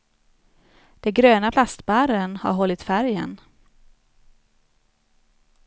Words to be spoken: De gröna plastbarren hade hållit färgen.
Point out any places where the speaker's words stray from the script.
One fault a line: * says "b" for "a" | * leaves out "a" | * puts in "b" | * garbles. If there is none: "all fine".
* says "har" for "hade"